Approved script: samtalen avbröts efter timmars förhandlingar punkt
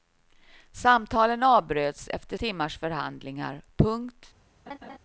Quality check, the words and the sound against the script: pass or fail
fail